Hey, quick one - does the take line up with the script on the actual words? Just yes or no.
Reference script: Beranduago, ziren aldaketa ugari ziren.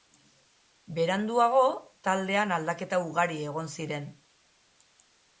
no